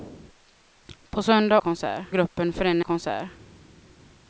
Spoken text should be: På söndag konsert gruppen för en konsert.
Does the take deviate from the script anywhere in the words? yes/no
no